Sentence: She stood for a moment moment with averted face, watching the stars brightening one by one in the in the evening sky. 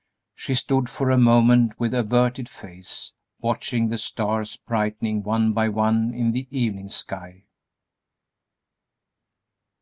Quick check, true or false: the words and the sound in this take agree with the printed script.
false